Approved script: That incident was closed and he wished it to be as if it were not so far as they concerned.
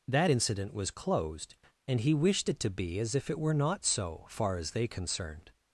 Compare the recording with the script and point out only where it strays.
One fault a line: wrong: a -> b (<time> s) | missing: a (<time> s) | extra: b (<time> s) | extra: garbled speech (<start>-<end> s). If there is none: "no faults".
no faults